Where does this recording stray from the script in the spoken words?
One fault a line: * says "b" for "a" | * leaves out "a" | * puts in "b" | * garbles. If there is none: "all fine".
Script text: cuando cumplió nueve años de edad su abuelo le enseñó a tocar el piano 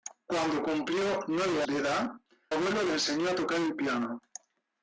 * leaves out "años"
* leaves out "su"